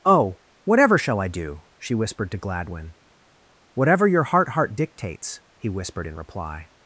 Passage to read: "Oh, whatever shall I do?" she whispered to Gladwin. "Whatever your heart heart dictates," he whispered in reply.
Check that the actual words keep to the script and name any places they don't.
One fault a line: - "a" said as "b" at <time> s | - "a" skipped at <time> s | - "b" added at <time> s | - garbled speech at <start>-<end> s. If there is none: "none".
none